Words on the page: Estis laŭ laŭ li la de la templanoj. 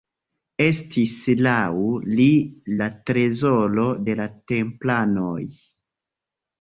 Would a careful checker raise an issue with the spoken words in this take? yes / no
yes